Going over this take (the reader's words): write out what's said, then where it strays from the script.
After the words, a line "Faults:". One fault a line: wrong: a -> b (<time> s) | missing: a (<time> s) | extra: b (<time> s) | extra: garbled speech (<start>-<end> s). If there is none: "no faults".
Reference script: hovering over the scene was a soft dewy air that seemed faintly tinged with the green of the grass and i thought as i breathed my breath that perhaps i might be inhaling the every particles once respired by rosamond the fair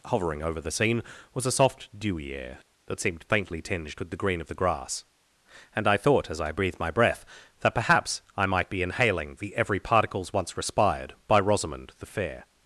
hovering over the scene was a soft dewy air that seemed faintly tinged with the green of the grass and i thought as i breathed my breath that perhaps i might be inhaling the every particles once respired by rosamond the fair
Faults:
no faults